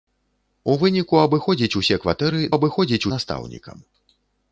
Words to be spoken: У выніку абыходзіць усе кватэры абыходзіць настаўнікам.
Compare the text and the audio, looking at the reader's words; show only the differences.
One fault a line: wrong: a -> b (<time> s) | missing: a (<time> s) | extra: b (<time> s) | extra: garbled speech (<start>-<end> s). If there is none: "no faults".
no faults